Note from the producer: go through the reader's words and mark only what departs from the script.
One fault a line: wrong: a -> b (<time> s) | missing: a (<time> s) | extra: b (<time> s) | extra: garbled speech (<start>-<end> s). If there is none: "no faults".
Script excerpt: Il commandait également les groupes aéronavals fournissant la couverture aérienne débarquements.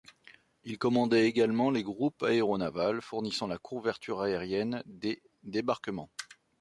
extra: des (4.9 s)